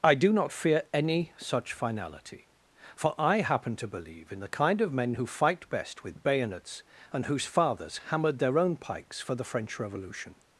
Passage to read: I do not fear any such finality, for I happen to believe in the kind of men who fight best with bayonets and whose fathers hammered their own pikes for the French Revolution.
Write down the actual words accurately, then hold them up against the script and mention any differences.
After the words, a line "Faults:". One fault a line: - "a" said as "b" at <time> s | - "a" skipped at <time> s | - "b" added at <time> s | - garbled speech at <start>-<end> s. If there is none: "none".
I do not fear any such finality, for I happen to believe in the kind of men who fight best with bayonets and whose fathers hammered their own pikes for the French Revolution.
Faults:
none